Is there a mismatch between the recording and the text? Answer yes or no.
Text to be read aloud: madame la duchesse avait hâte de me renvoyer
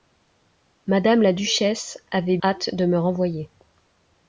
no